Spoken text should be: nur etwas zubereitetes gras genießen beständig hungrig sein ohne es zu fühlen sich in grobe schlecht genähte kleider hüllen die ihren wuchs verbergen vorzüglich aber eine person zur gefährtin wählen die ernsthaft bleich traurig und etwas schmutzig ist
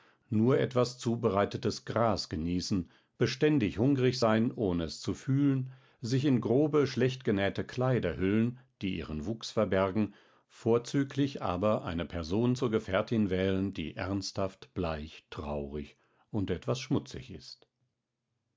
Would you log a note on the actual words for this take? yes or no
no